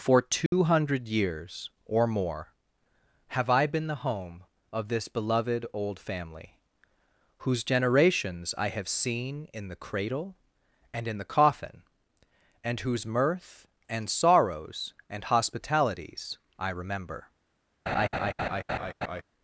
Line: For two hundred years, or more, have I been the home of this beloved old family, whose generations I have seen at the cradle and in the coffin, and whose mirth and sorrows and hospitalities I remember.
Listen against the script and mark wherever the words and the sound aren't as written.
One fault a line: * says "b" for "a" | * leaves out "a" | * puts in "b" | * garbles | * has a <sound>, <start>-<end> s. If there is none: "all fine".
* has a dropout, 0.5-0.5 s
* says "in" for "at"
* has a laugh, 17.9-19.2 s